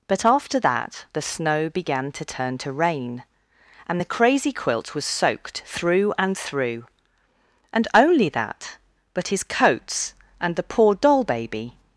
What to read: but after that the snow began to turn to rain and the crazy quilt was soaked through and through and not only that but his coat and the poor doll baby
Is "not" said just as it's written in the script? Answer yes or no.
no